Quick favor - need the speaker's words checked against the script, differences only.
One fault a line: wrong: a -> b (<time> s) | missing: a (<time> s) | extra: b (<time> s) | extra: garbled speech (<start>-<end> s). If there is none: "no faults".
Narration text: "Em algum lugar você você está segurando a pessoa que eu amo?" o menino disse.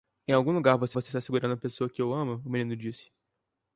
no faults